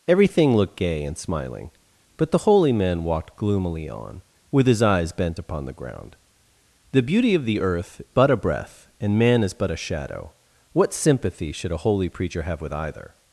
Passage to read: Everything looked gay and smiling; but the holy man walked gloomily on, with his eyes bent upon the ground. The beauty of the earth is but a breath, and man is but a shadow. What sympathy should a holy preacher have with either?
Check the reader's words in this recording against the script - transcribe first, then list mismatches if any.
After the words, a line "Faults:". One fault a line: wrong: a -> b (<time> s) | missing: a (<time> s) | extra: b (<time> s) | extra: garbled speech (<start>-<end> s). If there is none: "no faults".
Everything looked gay and smiling; but the holy man walked gloomily on, with his eyes bent upon the ground. The beauty of the earth but a breath, and man is but a shadow. What sympathy should a holy preacher have with either?
Faults:
missing: is (8.0 s)